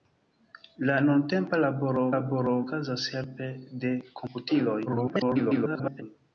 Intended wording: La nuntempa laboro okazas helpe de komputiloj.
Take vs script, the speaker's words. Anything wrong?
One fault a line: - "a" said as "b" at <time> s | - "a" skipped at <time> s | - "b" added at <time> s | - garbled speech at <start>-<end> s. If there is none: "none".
- "laboro" added at 2.1 s
- garbled speech at 4.9-6.0 s